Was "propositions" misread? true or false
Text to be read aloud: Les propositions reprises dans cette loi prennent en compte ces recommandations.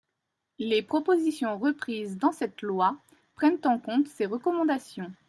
false